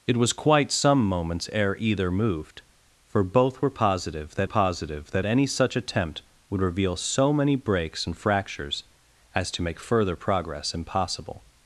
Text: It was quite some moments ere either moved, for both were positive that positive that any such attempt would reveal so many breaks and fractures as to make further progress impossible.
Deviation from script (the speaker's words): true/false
false